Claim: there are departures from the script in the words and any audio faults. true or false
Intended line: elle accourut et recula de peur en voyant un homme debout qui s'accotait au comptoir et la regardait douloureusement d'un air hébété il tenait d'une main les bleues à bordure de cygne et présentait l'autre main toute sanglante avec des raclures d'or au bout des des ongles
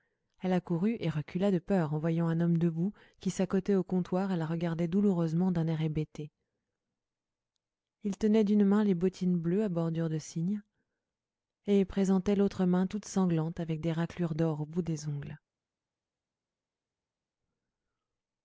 true